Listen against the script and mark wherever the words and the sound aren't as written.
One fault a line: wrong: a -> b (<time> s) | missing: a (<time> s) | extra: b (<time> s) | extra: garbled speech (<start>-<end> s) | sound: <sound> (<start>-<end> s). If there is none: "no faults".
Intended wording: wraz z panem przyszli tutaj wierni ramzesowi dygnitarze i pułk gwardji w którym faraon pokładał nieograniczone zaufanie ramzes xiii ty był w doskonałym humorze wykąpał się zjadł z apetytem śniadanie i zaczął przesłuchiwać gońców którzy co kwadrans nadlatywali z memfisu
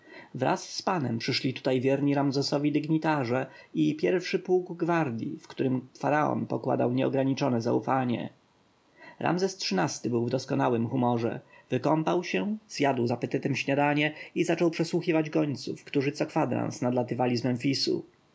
extra: pierwszy (4.0 s)